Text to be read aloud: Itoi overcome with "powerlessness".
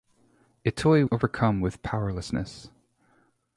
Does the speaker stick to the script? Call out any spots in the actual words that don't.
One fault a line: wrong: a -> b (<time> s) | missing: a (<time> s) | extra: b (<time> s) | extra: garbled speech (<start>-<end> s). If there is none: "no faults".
no faults